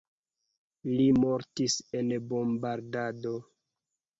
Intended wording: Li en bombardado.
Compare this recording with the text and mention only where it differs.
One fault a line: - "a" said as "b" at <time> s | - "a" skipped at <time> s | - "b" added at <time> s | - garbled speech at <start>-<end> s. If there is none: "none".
- "mortis" added at 1.1 s